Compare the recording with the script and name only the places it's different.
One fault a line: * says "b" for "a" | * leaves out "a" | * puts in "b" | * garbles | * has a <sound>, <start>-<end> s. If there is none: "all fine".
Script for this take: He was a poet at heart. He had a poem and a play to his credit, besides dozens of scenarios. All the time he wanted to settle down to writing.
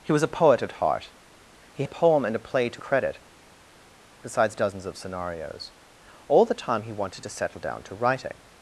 * leaves out "had"
* leaves out "his"